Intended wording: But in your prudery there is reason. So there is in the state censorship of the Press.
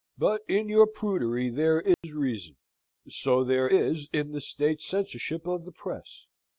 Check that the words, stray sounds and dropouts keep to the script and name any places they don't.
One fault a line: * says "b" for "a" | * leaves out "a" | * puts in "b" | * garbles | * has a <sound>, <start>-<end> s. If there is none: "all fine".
* has a dropout, 1.9-2.0 s